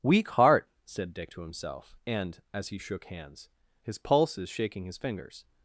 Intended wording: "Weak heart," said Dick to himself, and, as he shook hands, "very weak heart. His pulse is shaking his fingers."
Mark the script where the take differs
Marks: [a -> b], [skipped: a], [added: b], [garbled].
"Weak heart," said Dick to himself, and, as he shook hands, [skipped: "very weak heart.] His pulse is shaking his fingers."